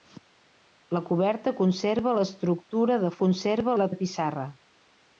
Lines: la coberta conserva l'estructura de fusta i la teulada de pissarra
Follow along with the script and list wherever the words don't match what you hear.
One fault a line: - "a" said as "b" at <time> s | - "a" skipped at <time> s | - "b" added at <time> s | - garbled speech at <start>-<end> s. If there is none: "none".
- "fusta" said as "conserva" at 3.2 s
- "teulada" skipped at 3.9 s